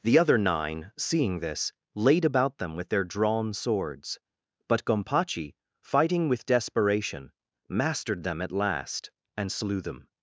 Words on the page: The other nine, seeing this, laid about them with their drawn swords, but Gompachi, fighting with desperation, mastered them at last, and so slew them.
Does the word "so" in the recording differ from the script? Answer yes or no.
yes